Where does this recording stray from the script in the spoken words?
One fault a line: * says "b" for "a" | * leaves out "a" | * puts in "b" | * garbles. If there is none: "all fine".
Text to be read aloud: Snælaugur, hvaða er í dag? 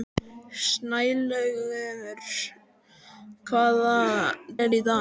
all fine